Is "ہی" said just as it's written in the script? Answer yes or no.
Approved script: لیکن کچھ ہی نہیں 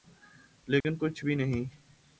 no